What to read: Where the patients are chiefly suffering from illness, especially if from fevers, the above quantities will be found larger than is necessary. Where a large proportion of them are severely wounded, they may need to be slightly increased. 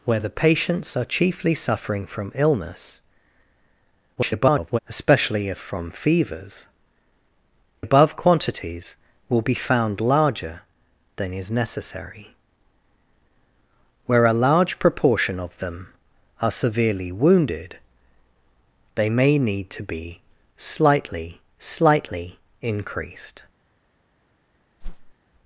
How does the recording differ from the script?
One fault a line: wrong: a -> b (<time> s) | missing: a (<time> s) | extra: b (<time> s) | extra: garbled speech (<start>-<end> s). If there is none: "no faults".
extra: garbled speech (4.2-4.8 s)
missing: the (6.7 s)
extra: slightly (21.6 s)